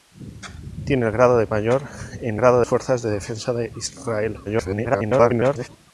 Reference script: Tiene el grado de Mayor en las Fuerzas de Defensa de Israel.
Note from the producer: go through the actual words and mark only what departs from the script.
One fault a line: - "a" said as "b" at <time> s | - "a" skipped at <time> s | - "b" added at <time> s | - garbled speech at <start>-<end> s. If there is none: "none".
- "las" said as "grado" at 2.3 s
- garbled speech at 4.5-5.7 s